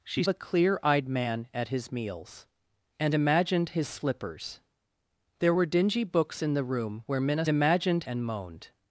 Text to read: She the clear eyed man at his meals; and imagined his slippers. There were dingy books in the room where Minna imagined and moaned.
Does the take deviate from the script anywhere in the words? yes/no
no